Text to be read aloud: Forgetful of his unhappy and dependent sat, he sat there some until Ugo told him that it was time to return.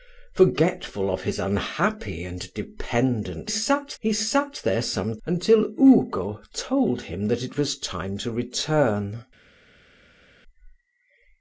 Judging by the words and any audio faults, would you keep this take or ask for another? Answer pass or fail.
pass